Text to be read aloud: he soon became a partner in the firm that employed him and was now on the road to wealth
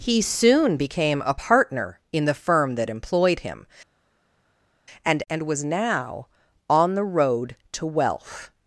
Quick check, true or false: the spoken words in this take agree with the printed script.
false